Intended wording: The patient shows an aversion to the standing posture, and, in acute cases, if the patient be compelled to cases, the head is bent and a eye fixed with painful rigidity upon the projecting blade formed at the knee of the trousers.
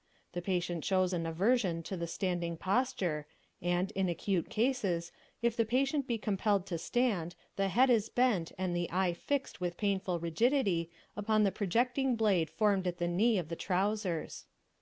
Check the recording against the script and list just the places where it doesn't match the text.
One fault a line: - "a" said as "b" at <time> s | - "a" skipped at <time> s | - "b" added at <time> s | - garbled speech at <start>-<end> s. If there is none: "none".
- "cases" said as "stand" at 6.8 s
- "a" said as "the" at 8.7 s